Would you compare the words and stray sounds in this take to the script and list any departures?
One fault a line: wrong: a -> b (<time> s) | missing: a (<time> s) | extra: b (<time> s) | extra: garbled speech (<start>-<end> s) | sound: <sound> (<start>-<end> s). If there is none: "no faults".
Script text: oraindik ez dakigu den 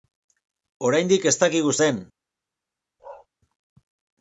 sound: bark (3.0-3.3 s)